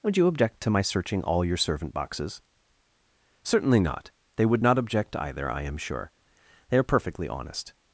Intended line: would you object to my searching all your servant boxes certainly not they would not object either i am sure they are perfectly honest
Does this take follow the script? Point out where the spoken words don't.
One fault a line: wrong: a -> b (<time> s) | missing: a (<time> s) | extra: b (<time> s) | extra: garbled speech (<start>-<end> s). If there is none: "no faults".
no faults